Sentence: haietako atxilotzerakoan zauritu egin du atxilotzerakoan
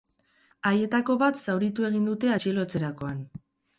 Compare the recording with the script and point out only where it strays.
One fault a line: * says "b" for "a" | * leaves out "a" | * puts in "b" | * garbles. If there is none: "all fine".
* says "bat" for "atxilotzerakoan"
* says "dute" for "du"